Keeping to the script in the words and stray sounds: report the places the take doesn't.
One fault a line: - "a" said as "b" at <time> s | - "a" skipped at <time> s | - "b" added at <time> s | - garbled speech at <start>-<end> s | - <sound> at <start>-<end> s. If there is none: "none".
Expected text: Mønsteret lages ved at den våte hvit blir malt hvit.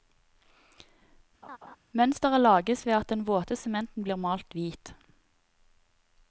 - laugh at 1.4-1.8 s
- "hvit" said as "sementen" at 3.6 s